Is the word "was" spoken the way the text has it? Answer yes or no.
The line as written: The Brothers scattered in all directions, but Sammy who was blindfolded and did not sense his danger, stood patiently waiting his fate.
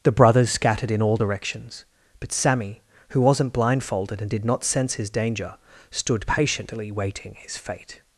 no